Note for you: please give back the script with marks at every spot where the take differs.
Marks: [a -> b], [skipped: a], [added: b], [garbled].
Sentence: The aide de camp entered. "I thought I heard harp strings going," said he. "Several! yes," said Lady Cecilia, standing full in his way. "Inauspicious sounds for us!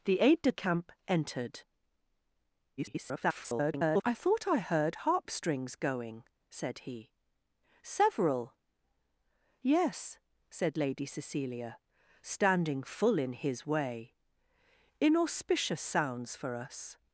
The aide de camp entered. [garbled] "I thought I heard harp strings going," said he. "Several! yes," said Lady Cecilia, standing full in his way. "Inauspicious sounds for us!